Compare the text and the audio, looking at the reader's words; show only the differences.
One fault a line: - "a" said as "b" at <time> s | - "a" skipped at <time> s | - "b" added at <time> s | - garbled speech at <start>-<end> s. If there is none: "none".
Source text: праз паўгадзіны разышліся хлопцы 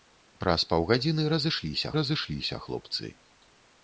- "разышліся" added at 2.0 s